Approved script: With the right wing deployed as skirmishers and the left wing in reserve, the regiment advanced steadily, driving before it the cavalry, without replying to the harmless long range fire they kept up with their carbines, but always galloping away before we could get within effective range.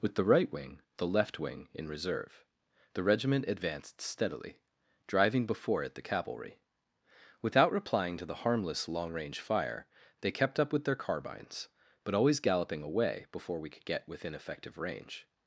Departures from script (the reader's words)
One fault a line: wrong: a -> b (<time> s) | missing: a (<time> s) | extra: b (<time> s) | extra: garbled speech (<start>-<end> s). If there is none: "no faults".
missing: deployed as skirmishers and (0.8 s)